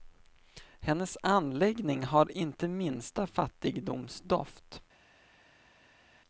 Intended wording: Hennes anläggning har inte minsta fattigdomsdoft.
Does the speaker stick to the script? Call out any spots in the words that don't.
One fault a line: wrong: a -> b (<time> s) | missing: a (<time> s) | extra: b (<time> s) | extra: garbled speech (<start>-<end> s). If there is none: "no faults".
no faults